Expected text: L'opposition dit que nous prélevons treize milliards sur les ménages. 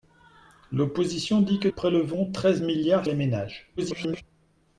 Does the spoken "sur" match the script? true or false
false